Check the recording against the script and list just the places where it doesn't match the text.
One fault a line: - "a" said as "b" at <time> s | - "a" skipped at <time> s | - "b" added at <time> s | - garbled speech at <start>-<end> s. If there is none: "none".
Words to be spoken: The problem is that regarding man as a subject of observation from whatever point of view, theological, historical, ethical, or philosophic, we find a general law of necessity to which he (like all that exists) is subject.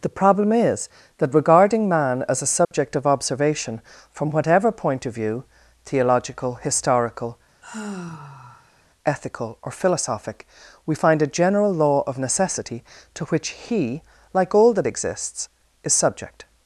none